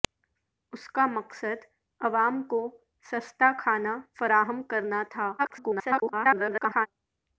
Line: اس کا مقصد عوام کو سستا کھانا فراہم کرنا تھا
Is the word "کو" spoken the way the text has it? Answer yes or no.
yes